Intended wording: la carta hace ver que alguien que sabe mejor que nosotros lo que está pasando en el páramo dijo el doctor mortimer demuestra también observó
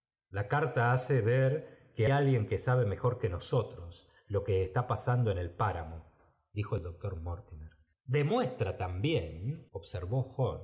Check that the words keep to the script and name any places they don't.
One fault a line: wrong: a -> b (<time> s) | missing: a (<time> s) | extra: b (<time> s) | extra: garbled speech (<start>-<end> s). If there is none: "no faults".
no faults